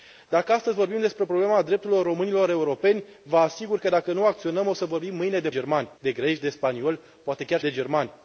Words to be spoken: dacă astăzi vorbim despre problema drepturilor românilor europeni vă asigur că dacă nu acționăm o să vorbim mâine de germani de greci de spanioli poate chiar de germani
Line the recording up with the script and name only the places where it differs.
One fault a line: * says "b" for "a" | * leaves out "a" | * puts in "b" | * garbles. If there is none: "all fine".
all fine